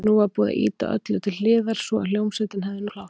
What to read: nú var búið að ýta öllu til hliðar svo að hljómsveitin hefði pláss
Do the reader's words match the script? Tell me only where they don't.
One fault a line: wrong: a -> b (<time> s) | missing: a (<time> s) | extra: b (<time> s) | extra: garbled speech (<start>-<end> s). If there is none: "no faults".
no faults